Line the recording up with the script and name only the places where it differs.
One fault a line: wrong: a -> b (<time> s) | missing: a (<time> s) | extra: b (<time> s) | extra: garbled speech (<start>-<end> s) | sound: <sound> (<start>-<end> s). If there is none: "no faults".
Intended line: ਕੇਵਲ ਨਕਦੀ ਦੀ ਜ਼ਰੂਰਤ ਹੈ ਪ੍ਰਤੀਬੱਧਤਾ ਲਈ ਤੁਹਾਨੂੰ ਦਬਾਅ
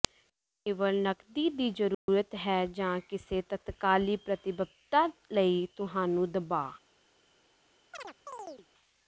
sound: dropout (1.9-2.1 s)
extra: ਜਾਂ ਕਿਸੇ ਤਤਕਾਲੀ (2.7 s)
sound: chirp (7.9-8.7 s)